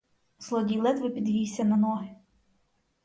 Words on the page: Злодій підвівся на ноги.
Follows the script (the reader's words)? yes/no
no